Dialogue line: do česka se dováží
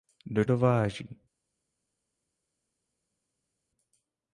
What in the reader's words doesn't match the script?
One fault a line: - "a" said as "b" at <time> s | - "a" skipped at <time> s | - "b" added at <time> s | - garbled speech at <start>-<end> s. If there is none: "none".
- "česka se" skipped at 0.5 s